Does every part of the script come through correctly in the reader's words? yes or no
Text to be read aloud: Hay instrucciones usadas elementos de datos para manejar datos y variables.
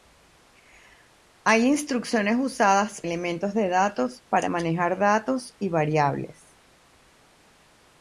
yes